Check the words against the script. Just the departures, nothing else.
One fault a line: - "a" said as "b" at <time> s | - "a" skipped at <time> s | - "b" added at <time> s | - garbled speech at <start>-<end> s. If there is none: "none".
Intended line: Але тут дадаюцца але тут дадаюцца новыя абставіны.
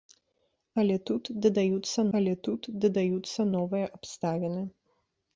none